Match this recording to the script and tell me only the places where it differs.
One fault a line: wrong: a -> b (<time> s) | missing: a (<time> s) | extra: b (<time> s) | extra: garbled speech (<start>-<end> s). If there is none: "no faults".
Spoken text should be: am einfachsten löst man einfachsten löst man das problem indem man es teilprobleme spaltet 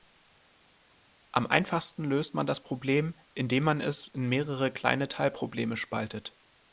missing: einfachsten löst man (2.4 s)
extra: in mehrere kleine (4.1 s)